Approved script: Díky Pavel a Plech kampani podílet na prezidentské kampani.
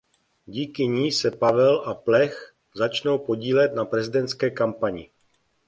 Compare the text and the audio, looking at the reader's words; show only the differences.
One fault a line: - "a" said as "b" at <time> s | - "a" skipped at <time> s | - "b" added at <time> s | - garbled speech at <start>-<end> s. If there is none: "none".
- "ní se" added at 0.9 s
- "kampani" said as "začnou" at 2.8 s